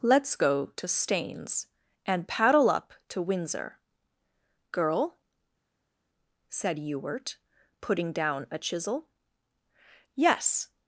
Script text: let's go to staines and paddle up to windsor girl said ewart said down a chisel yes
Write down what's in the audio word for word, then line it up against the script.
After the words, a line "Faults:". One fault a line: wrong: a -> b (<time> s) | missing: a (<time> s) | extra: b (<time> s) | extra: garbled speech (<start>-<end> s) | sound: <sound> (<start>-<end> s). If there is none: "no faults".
let's go to staines and paddle up to windsor girl said ewart putting down a chisel yes
Faults:
wrong: said -> putting (7.8 s)